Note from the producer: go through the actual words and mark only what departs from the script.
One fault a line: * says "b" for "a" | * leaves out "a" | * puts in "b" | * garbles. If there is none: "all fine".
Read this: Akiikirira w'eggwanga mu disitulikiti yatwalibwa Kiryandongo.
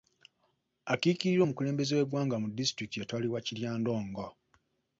* puts in "omukulembeze"